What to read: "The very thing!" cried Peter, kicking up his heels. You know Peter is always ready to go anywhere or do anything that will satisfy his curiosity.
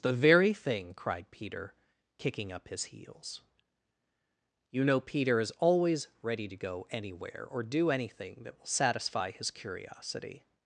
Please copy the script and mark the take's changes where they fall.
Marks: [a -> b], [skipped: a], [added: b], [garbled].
"The very thing!" cried Peter, kicking up his heels. You know Peter is always ready to go anywhere or do anything that will satisfy his curiosity.